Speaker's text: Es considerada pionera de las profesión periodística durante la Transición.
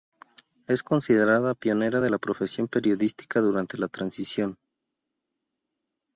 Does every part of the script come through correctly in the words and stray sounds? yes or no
no